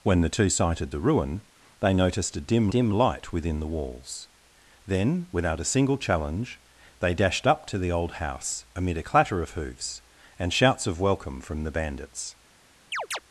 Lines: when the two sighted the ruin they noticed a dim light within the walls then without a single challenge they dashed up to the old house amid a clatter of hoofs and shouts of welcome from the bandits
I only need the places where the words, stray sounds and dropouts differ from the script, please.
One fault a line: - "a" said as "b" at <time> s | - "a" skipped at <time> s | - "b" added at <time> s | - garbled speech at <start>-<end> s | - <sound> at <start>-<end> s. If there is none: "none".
- "dim" added at 2.7 s
- chirp at 12.9-13.2 s